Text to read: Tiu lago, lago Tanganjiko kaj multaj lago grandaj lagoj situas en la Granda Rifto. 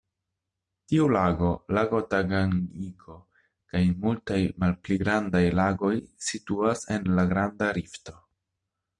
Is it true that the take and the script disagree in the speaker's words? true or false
true